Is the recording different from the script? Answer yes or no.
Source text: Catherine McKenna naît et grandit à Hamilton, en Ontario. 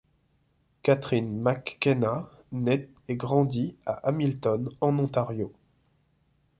no